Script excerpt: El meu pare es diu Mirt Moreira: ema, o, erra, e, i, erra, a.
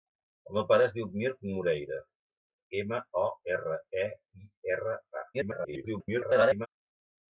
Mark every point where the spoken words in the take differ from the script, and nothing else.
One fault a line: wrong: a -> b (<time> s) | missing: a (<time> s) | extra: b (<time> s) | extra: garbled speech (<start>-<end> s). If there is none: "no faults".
extra: garbled speech (5.3-6.7 s)